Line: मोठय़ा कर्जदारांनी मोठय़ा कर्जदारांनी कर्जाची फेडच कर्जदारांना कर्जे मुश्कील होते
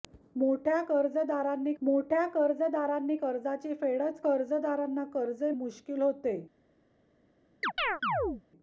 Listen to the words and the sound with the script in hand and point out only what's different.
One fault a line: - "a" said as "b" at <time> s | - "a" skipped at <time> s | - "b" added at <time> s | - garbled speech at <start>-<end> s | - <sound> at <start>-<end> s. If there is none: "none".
- chirp at 7.6-8.4 s